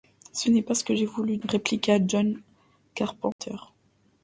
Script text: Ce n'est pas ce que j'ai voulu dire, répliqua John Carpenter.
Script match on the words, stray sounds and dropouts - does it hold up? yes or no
no